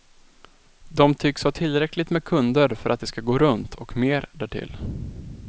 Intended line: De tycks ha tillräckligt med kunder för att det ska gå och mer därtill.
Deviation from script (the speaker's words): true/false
true